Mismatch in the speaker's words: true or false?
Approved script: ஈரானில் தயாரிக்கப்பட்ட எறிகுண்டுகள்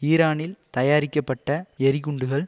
false